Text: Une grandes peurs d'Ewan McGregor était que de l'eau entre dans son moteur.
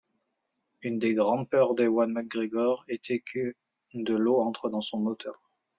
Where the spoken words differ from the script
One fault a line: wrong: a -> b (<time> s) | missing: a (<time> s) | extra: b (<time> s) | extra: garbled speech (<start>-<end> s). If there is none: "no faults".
extra: des (1.0 s)